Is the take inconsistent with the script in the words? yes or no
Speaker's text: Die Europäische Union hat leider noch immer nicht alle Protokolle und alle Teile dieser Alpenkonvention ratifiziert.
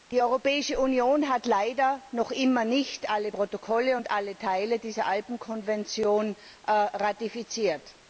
no